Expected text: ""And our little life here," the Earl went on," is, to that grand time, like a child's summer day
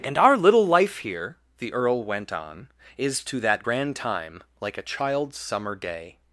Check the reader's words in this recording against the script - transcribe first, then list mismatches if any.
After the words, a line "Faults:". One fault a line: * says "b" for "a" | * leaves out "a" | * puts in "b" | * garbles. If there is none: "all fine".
""And our little life here," the Earl went on," is, to that grand time, like a child's summer day
Faults:
all fine